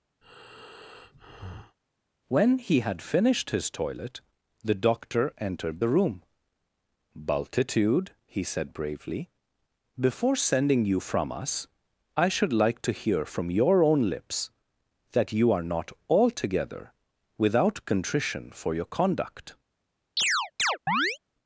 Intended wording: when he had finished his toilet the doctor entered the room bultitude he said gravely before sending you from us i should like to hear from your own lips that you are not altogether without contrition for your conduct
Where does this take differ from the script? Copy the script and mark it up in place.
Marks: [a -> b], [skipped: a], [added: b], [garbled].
when he had finished his toilet the doctor entered the room bultitude he said [gravely -> bravely] before sending you from us i should like to hear from your own lips that you are not altogether without contrition for your conduct